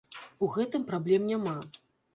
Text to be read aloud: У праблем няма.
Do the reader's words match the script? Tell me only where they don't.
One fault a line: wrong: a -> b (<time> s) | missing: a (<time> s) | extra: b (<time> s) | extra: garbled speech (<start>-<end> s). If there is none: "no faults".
extra: гэтым (0.6 s)